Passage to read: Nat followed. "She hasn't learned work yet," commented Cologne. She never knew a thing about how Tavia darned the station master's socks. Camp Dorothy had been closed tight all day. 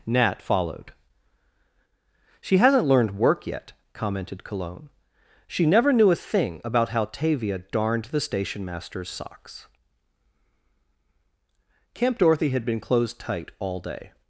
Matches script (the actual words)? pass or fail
pass